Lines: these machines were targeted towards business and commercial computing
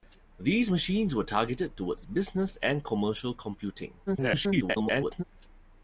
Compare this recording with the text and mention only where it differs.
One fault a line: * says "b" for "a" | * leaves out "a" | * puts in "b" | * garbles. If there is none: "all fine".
* garbles